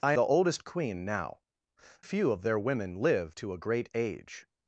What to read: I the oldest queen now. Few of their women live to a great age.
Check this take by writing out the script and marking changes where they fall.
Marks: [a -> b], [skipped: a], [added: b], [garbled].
I the oldest queen now. Few of their women live to a great age.